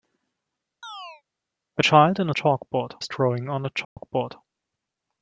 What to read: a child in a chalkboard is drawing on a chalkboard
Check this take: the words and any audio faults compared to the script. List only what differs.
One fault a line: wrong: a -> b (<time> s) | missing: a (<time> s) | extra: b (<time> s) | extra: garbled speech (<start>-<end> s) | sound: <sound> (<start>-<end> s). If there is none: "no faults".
sound: chirp (0.8-1.2 s)
sound: dropout (3.8-4.0 s)